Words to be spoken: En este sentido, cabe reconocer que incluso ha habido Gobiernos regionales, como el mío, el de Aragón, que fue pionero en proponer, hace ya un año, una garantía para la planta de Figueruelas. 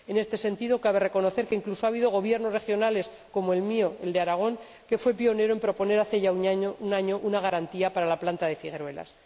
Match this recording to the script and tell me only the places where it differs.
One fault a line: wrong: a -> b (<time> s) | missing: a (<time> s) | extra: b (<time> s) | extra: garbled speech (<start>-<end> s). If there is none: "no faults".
no faults